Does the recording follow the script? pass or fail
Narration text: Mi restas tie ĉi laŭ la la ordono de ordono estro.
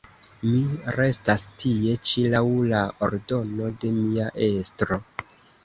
fail